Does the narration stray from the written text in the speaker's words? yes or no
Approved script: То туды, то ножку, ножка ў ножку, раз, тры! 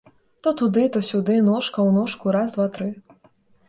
yes